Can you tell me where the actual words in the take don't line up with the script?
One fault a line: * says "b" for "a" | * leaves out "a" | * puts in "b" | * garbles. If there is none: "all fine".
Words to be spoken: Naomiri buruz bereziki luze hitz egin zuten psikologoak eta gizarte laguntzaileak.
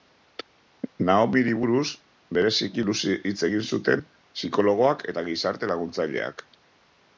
all fine